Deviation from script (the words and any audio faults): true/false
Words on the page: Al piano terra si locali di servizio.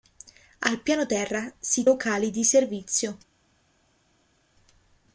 false